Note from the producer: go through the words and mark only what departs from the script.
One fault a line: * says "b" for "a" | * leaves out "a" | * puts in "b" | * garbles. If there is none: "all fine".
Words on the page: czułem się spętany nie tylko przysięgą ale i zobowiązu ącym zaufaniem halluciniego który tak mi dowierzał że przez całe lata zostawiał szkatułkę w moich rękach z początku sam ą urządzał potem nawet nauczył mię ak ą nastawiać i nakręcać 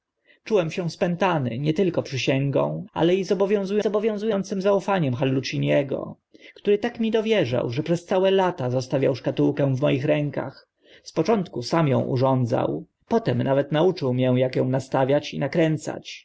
* puts in "zobowiązu"